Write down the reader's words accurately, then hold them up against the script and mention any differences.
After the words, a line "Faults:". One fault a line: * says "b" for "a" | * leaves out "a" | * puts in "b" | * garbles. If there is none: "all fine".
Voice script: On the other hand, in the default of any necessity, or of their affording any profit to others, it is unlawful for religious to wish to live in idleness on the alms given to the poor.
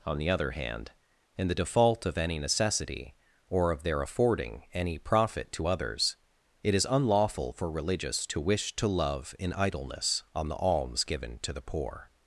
On the other hand, in the default of any necessity, or of their affording any profit to others, it is unlawful for religious to wish to love in idleness on the alms given to the poor.
Faults:
* says "love" for "live"